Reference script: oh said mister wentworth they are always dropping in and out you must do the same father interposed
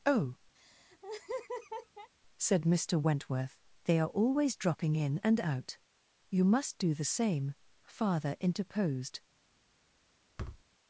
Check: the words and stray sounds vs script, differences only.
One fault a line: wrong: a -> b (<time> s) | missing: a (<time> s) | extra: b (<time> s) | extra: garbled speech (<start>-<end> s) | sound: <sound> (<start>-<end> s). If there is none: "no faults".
sound: laugh (0.5-2.1 s)
sound: thud (10.4-10.6 s)